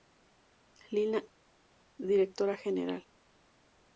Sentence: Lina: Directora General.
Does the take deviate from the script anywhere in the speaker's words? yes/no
no